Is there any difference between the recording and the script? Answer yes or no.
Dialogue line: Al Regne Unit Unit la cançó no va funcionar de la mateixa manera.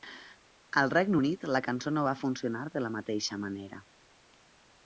yes